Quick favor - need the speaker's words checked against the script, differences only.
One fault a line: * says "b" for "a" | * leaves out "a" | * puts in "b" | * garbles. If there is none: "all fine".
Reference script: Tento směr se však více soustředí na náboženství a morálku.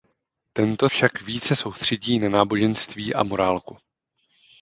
* leaves out "směr se"